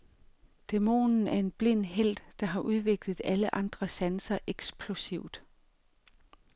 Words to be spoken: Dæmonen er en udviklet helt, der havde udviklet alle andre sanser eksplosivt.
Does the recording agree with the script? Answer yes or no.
no